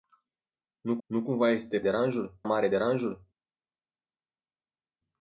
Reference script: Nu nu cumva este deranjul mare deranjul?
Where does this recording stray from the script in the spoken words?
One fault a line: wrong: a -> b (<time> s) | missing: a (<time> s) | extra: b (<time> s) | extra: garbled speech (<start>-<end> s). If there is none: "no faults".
no faults